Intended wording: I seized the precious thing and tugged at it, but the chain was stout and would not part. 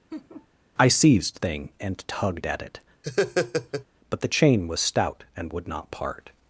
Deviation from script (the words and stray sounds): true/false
true